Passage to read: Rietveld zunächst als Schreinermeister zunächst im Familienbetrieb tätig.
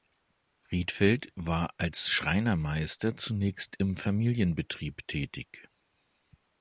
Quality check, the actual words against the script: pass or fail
fail